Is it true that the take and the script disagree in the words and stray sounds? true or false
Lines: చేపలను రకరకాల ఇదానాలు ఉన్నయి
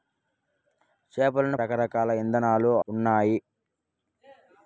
false